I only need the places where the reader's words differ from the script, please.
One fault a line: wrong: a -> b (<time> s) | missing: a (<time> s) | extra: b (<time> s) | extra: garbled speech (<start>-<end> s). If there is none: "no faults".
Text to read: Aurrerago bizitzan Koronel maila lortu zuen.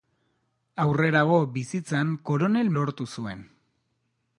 missing: maila (2.7 s)